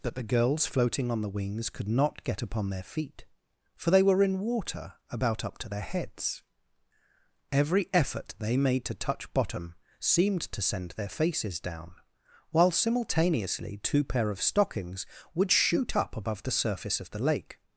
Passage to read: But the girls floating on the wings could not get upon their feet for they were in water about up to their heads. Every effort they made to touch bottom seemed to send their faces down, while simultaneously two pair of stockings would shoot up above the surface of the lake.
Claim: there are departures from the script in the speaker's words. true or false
true